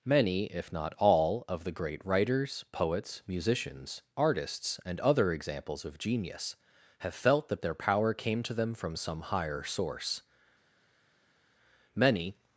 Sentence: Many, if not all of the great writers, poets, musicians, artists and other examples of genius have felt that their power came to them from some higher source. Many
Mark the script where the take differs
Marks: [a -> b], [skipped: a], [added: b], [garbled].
Many, if not all of the great writers, poets, musicians, artists and other examples of genius have felt that their power came to them from some higher source. Many